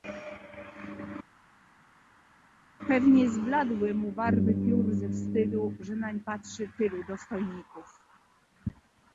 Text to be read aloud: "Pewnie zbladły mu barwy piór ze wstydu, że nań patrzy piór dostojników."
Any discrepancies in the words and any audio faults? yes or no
yes